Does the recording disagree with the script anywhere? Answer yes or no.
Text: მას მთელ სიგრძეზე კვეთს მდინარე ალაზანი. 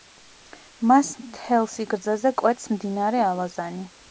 no